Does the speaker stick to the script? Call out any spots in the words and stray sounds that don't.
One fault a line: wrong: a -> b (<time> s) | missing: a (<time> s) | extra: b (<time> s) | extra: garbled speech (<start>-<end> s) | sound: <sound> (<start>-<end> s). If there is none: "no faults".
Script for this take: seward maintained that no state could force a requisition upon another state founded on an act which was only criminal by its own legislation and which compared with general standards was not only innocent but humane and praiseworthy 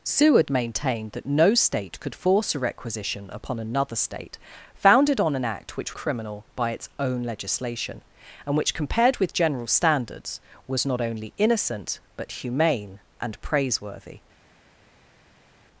missing: was only (5.9 s)